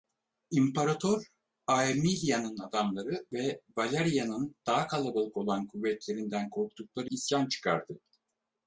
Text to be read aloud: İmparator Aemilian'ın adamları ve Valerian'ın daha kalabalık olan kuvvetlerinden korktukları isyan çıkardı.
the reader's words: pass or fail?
pass